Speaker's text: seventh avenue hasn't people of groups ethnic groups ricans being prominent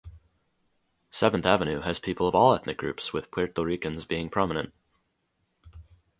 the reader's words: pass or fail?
fail